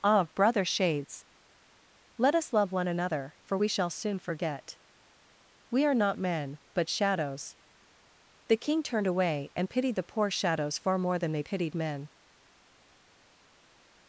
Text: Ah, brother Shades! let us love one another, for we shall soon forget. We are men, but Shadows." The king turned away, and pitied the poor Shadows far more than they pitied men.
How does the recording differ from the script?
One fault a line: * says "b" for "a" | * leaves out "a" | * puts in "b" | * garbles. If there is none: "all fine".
* puts in "not"